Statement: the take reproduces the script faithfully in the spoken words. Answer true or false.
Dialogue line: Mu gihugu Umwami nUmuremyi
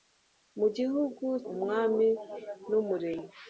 true